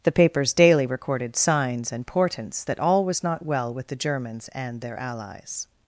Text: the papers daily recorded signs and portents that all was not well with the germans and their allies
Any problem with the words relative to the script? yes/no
no